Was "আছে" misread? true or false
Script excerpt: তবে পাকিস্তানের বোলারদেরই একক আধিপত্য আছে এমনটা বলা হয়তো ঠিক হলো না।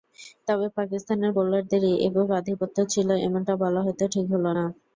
true